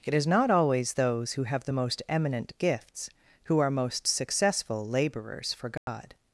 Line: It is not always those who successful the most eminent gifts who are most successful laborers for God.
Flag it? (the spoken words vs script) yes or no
yes